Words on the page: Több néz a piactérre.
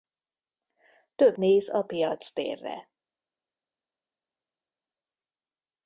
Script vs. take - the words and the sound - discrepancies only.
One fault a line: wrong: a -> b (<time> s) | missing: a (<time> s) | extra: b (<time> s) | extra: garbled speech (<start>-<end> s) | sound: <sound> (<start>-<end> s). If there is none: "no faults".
no faults